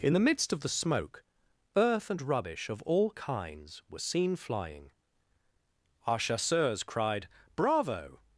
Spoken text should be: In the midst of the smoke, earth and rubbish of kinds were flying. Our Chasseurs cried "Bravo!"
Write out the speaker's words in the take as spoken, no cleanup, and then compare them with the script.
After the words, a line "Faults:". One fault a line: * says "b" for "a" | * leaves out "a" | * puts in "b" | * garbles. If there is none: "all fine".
In the midst of the smoke, earth and rubbish of all kinds were seen flying. Our Chasseurs cried "Bravo!"
Faults:
* puts in "all"
* puts in "seen"